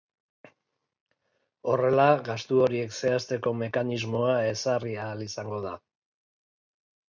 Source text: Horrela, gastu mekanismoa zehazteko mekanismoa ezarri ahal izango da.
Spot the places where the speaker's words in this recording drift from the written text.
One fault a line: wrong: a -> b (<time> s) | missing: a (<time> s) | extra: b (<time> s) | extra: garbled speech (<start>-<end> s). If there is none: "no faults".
wrong: mekanismoa -> horiek (2.7 s)